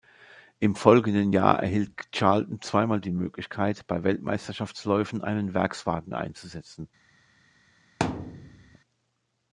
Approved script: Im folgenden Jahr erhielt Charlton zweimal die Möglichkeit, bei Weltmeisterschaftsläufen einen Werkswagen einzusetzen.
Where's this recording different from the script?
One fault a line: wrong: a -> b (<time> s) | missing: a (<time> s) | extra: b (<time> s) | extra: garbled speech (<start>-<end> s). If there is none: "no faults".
no faults